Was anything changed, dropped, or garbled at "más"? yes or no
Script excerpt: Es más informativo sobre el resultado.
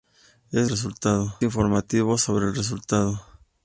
yes